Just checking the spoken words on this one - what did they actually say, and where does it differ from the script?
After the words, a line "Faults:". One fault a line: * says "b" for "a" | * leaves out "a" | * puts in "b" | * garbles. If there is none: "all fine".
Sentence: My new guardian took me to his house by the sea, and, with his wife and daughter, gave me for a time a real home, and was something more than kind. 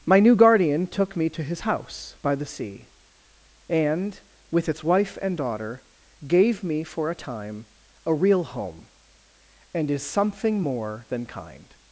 My new guardian took me to his house by the sea, and, with its wife and daughter, gave me for a time a real home, and is something more than kind.
Faults:
* says "its" for "his"
* says "is" for "was"